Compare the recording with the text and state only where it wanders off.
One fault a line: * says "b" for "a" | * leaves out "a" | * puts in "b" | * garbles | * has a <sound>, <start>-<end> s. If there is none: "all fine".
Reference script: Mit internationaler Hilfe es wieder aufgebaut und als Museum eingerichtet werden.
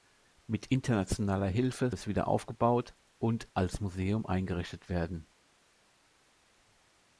all fine